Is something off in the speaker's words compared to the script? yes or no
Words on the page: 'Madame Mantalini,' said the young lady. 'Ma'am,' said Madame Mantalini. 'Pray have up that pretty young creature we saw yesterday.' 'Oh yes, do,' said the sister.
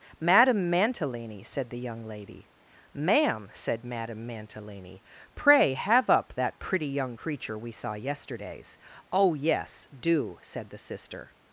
yes